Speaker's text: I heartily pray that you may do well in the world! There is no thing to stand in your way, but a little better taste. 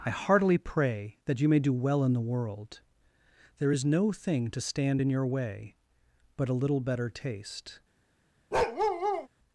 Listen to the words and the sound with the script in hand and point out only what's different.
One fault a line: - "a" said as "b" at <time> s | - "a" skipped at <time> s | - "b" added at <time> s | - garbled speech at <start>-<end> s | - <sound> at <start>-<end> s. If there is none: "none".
- bark at 8.5-9.3 s